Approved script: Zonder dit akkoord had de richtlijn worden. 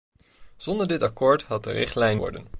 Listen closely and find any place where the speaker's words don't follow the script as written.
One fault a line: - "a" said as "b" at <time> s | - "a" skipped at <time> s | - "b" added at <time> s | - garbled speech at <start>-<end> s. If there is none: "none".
none